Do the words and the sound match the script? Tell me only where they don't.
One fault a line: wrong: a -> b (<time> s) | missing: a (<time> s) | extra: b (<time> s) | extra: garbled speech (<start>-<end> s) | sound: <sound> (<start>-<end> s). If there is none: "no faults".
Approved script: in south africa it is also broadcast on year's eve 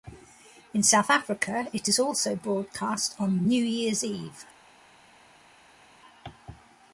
extra: new (3.5 s)